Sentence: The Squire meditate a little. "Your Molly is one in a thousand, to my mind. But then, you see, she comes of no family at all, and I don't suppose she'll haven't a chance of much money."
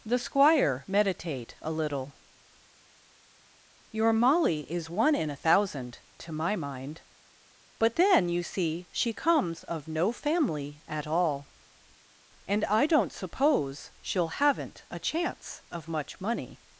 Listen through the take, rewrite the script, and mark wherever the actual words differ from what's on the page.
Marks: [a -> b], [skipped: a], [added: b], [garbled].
The Squire meditate a little. "Your Molly is one in a thousand, to my mind. But then, you see, she comes of no family at all, and I don't suppose she'll haven't a chance of much money."